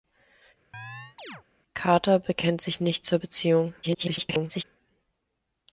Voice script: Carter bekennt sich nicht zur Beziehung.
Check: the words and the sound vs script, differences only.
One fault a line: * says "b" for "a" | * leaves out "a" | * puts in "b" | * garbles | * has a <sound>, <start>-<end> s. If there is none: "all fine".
* has a chirp, 0.7-1.4 s
* garbles